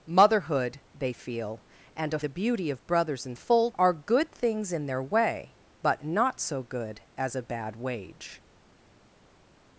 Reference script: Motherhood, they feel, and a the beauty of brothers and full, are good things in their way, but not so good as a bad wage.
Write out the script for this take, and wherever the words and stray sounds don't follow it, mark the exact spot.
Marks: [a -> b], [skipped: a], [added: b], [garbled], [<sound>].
Motherhood, they feel, and a the beauty of brothers and full, are good things in their way, but not so good as a bad wage.